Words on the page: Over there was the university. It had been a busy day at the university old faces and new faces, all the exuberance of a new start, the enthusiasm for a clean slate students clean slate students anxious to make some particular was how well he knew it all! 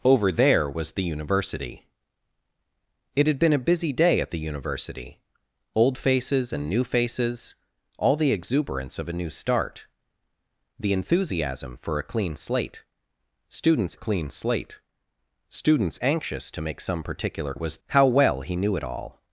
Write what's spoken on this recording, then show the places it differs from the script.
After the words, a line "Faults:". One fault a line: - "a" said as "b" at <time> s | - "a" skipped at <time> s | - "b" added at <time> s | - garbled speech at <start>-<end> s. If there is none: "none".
Over there was the university. It had been a busy day at the university old faces and new faces, all the exuberance of a new start, the enthusiasm for a clean slate students clean slate students anxious to make some particular was how well he knew it all!
Faults:
none